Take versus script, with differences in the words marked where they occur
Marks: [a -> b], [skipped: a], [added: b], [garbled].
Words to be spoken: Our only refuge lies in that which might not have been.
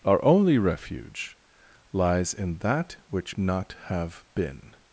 Our only refuge lies in that which [skipped: might] not have been.